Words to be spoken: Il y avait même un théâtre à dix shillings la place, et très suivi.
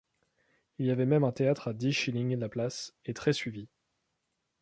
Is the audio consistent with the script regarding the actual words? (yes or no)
yes